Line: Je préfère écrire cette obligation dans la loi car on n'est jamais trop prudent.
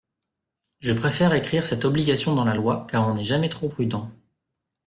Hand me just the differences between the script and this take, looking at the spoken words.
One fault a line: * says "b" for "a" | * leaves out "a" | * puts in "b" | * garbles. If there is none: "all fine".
all fine